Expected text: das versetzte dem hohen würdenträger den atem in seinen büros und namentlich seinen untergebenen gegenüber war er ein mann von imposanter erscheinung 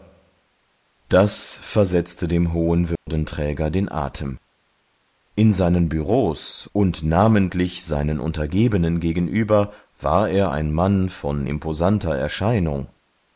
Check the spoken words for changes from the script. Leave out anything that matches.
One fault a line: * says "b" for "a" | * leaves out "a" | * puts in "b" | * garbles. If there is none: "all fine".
all fine